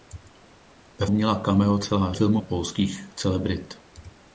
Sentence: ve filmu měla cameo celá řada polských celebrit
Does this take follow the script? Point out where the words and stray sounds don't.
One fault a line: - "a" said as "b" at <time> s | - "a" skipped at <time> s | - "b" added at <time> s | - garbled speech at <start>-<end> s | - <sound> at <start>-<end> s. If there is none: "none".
- "filmu" skipped at 1.1 s
- "řada" said as "filmu" at 2.1 s